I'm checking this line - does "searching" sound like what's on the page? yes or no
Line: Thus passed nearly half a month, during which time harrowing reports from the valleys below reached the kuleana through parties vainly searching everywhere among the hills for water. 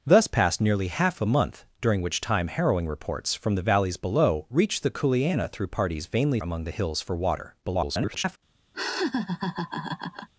no